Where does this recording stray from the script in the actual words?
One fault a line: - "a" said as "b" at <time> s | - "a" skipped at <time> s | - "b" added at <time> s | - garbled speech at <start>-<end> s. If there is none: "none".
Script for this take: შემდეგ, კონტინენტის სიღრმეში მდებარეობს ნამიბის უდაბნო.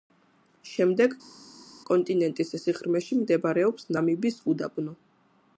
none